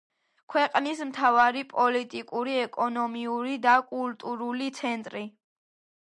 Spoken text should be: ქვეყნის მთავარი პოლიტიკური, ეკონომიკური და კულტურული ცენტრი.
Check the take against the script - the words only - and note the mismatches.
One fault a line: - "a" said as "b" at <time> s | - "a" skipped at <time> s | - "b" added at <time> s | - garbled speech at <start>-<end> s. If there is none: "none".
none